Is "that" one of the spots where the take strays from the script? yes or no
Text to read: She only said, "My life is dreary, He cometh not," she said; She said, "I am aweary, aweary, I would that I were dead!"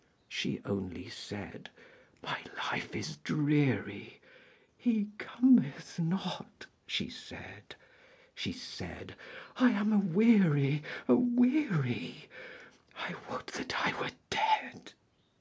no